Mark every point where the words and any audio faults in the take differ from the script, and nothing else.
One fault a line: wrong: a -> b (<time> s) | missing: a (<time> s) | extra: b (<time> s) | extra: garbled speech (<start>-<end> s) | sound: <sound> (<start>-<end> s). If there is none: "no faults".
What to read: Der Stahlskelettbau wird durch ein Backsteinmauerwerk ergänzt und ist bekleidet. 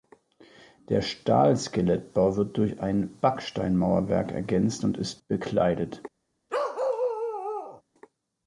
sound: bark (6.5-7.8 s)